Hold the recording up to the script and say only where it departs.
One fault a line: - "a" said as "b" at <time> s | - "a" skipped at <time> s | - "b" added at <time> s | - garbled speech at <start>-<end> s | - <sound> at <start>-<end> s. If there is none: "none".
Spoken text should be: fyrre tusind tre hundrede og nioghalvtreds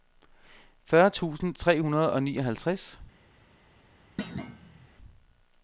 - thud at 4.2-4.9 s